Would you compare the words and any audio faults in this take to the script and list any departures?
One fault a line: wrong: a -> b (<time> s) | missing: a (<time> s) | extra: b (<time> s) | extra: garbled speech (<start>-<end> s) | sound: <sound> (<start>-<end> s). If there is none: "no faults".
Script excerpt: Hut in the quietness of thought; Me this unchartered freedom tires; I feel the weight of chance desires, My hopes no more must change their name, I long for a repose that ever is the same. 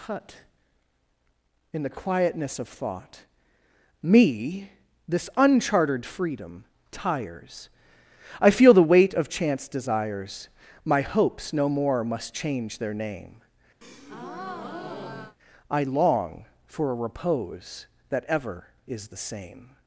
sound: breath (13.8-15.4 s)